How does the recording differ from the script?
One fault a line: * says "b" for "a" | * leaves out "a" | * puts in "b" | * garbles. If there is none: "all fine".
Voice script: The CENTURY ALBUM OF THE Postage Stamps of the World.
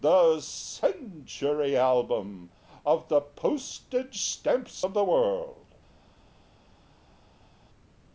all fine